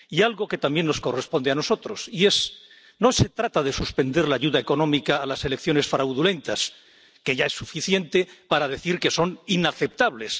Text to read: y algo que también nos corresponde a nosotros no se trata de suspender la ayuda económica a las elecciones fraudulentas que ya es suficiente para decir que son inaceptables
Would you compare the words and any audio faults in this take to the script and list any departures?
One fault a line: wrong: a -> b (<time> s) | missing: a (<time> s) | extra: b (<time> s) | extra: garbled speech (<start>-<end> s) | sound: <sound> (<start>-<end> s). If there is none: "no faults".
no faults